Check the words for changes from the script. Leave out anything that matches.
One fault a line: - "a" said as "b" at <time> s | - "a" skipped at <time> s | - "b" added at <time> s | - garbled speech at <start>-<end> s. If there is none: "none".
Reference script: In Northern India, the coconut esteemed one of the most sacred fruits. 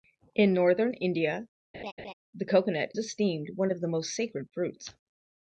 none